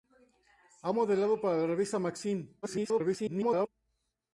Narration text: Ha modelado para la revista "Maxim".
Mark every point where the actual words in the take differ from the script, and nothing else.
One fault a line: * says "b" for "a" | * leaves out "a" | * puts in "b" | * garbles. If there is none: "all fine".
* garbles